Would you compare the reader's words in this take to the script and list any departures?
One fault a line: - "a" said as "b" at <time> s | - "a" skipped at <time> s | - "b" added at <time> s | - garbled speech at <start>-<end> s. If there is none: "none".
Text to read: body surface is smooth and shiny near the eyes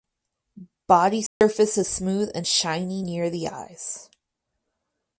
none